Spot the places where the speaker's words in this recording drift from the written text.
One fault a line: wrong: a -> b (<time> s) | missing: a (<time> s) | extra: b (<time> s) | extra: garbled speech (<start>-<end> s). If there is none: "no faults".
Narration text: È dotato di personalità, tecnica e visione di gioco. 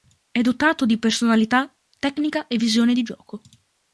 no faults